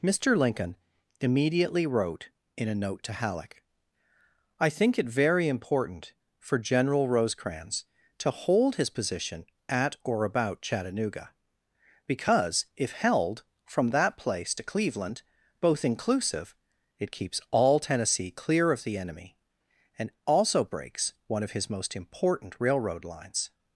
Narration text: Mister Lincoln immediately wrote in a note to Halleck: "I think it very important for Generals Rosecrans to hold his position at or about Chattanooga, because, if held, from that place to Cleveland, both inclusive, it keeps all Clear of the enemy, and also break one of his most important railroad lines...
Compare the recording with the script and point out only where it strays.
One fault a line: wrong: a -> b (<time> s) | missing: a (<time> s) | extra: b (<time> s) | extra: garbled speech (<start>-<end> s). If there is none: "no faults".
wrong: Generals -> General (6.6 s)
extra: Tennessee (17.8 s)
wrong: break -> breaks (20.6 s)